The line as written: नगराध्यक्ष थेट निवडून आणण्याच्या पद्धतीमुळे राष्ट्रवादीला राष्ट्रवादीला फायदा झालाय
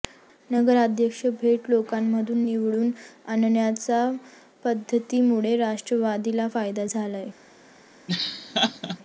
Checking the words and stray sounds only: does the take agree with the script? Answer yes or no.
no